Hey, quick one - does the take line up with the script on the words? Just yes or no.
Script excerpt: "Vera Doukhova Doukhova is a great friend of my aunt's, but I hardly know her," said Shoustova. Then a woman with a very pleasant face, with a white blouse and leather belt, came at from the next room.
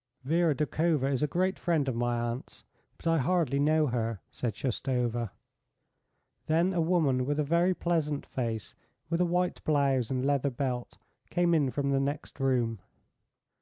no